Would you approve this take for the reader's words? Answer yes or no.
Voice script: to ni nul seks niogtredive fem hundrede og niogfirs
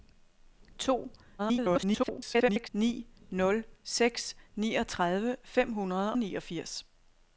no